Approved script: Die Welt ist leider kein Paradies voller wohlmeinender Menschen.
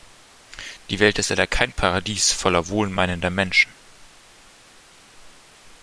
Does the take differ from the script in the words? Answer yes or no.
no